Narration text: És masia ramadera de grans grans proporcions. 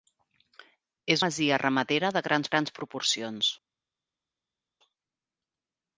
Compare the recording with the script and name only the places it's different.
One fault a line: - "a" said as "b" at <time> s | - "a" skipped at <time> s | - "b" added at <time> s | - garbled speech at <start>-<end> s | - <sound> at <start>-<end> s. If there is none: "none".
none